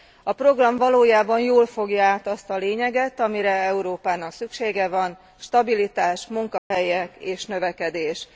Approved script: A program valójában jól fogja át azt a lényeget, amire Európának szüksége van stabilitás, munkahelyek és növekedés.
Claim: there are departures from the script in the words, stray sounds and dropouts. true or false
true